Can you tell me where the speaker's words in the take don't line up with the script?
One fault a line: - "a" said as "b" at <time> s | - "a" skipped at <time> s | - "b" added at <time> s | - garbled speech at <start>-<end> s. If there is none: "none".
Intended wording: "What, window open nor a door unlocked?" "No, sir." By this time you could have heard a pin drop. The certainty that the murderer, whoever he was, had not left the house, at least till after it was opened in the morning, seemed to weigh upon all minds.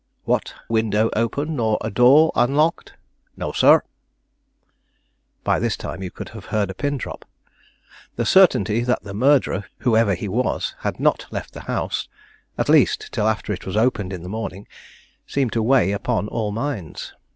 none